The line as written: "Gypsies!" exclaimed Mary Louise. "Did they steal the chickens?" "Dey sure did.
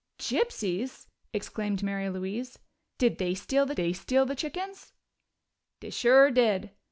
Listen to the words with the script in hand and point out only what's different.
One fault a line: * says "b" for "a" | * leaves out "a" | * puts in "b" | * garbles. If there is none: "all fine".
* puts in "they steal the"